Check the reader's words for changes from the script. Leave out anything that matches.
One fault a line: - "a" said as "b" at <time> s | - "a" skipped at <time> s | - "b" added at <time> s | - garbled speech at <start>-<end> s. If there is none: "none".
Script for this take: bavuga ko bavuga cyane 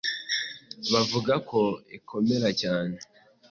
- "bavuga" said as "ikomera" at 2.0 s